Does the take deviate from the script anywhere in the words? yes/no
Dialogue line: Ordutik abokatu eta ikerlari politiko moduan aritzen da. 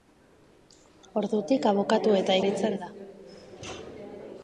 yes